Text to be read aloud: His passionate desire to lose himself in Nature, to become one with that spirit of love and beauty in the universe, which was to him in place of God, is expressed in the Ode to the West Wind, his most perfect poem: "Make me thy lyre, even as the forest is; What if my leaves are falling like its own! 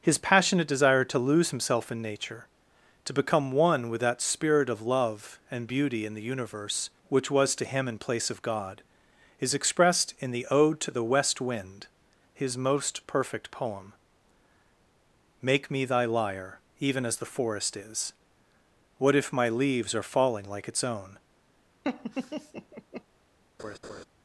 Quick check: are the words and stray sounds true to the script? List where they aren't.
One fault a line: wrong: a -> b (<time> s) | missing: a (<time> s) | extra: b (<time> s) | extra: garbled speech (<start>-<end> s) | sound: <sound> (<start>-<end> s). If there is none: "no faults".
sound: laugh (21.8-23.0 s)
sound: laugh (23.6-24.0 s)